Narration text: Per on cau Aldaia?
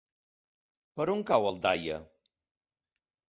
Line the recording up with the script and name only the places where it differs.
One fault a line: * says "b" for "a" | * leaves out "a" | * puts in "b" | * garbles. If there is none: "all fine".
all fine